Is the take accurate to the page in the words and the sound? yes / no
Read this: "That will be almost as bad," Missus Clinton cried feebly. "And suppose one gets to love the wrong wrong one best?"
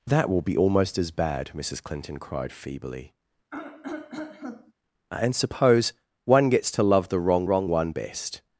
no